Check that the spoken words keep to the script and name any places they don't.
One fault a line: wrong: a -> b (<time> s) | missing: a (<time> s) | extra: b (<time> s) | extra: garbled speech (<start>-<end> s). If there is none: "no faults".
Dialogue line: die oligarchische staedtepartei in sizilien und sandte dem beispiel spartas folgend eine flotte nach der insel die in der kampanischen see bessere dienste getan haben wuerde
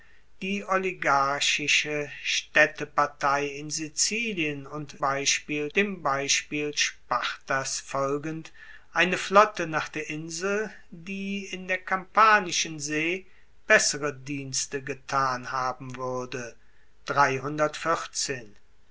wrong: sandte -> beispiel (5.0 s)